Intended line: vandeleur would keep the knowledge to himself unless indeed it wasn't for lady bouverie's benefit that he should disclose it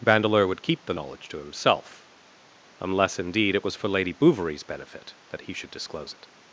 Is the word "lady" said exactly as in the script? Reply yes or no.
yes